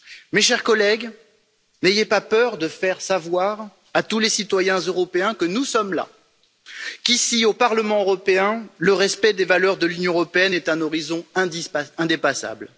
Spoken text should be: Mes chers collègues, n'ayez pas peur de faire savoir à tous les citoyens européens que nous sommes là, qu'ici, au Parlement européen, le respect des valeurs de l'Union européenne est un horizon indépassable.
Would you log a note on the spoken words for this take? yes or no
no